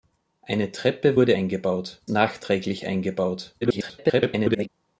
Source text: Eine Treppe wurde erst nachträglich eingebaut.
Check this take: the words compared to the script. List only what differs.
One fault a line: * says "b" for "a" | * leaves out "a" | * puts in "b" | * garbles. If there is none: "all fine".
* says "eingebaut" for "erst"
* garbles